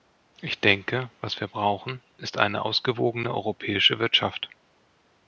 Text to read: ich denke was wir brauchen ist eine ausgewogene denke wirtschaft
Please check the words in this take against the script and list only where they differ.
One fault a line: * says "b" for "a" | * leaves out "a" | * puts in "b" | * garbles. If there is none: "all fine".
* says "europäische" for "denke"